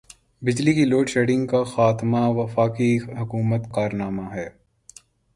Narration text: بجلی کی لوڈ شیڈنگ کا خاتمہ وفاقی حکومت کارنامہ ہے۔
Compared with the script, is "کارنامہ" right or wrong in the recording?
right